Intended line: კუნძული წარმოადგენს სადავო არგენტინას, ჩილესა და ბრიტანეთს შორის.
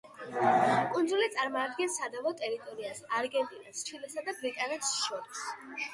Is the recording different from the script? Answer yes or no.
yes